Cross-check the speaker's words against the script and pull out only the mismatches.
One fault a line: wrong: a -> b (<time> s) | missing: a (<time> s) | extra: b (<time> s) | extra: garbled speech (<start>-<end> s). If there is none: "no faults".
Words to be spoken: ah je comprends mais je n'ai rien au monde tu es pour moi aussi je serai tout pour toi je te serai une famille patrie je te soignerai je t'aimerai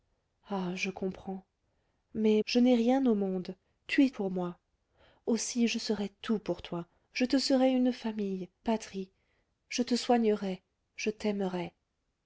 no faults